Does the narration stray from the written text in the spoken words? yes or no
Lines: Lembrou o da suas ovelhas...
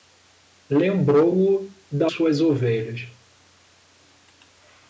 no